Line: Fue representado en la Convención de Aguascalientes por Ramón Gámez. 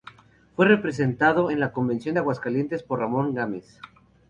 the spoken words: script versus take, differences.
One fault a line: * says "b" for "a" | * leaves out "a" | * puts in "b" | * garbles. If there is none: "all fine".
all fine